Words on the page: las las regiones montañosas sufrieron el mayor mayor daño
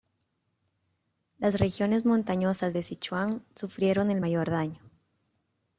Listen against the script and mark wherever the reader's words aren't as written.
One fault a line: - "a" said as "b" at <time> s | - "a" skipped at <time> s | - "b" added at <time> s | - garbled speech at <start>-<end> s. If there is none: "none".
- "las" skipped at 1.6 s
- "de sichuan" added at 2.7 s
- "mayor" skipped at 4.5 s